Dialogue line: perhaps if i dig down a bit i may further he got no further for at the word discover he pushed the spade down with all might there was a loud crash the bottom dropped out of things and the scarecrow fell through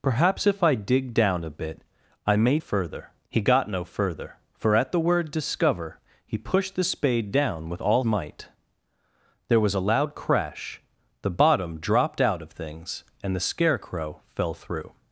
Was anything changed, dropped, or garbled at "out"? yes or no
no